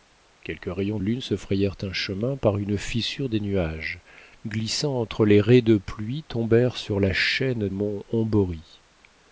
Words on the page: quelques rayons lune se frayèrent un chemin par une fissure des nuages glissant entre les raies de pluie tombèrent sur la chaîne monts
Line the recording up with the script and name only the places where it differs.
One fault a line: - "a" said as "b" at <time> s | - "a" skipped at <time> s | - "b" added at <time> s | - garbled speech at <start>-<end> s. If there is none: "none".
none